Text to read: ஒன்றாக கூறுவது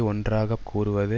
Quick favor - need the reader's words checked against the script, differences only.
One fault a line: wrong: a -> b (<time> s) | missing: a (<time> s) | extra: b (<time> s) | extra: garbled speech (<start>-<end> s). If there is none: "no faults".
no faults